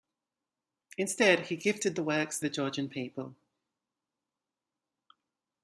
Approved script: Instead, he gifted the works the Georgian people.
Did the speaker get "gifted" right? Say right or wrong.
right